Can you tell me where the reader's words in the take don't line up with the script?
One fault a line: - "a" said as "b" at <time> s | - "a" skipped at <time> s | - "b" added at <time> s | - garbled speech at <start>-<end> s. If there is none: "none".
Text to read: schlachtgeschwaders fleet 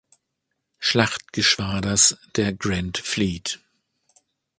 - "der grand" added at 2.4 s